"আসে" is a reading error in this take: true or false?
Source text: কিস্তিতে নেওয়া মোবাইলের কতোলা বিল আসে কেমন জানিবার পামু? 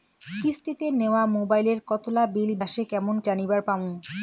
false